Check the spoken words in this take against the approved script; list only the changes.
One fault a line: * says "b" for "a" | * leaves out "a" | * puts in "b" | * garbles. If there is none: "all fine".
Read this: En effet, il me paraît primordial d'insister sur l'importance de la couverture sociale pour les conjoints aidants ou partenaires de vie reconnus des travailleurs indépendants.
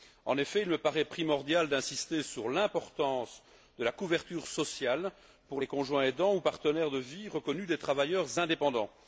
all fine